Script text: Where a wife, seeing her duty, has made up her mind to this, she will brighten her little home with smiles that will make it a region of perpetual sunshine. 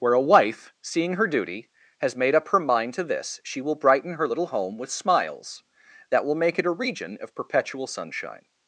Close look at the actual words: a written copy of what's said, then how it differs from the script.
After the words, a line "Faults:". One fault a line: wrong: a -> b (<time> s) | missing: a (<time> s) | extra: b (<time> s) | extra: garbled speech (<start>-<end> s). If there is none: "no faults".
Where a wife, seeing her duty, has made up her mind to this, she will brighten her little home with smiles that will make it a region of perpetual sunshine.
Faults:
no faults